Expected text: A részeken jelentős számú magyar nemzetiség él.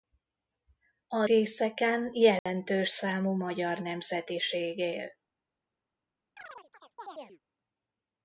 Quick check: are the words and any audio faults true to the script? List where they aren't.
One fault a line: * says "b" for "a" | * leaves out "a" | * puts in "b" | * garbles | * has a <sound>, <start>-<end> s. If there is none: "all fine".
* has a dropout, 2.4-2.5 s
* has a chirp, 6.4-7.4 s